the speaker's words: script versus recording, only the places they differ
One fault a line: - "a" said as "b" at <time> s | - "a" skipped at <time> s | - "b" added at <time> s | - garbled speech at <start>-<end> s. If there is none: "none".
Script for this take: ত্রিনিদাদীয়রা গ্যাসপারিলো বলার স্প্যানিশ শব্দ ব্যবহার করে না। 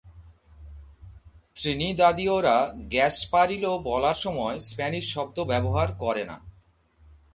- "সময়" added at 4.2 s